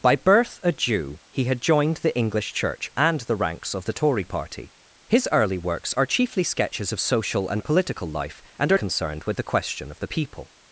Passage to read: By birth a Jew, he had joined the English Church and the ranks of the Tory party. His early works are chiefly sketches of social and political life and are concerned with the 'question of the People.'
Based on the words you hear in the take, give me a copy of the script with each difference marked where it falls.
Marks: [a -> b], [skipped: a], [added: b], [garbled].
By birth a Jew, he had joined the English Church and the ranks of the Tory party. His early works are chiefly sketches of social and political life and are concerned with the 'question of the People.'